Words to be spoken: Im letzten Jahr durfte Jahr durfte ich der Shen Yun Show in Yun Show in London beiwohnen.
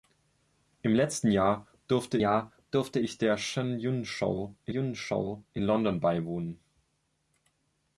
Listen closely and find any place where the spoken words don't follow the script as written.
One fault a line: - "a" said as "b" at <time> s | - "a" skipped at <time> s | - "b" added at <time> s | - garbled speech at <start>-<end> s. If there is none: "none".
none